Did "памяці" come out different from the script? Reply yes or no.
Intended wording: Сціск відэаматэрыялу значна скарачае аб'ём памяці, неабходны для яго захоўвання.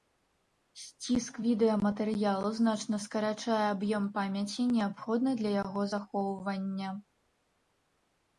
no